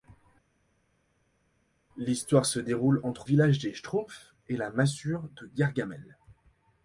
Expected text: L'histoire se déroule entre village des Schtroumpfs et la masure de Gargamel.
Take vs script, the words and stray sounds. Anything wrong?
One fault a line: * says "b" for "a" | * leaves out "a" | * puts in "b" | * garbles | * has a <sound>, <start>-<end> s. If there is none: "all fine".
all fine